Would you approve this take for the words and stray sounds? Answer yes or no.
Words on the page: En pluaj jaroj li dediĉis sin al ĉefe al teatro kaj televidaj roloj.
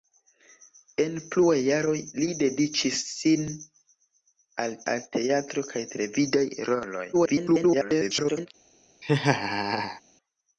no